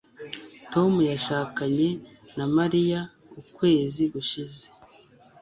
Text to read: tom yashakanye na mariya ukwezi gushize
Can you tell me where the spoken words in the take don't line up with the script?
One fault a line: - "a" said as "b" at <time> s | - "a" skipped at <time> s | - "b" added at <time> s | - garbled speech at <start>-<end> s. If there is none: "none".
none